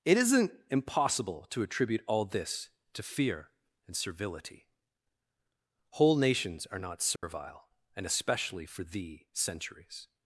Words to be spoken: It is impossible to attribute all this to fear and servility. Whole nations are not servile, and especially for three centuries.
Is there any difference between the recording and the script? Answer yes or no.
yes